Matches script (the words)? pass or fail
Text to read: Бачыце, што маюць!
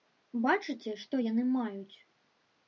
fail